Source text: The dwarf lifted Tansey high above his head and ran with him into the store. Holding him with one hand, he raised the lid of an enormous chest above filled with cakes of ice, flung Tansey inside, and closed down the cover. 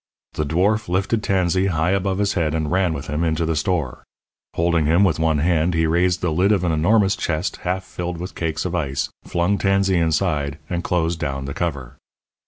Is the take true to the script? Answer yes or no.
no